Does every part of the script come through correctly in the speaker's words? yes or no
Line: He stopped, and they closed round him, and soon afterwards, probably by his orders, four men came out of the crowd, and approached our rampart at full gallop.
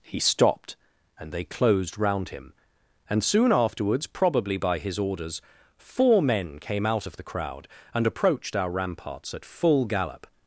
no